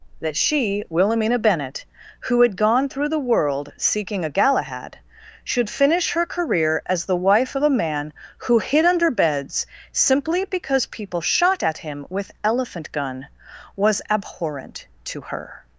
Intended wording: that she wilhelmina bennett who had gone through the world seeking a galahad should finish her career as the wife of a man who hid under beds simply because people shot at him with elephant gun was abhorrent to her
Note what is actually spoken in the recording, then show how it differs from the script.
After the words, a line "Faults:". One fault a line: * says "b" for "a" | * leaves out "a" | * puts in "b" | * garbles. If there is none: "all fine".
that she wilhelmina bennett who had gone through the world seeking a galahad should finish her career as the wife of a man who hid under beds simply because people shot at him with elephant gun was abhorrent to her
Faults:
all fine